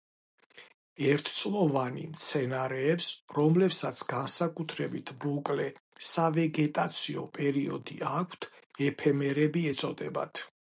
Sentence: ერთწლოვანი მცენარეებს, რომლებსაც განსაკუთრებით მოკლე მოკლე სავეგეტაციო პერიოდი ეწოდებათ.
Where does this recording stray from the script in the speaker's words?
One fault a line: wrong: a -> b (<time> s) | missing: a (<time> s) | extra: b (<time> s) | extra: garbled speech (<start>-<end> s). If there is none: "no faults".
missing: მოკლე (5.7 s)
extra: აქვთ ეფემერები (8.2 s)